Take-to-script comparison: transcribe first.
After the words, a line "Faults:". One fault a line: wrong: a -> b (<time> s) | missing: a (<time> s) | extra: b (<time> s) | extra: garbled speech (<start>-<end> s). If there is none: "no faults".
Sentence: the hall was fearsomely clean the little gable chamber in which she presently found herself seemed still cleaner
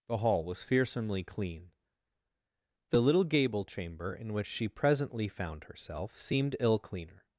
the hall was fearsomely clean the little gable chamber in which she presently found herself seemed ill cleaner
Faults:
wrong: still -> ill (6.6 s)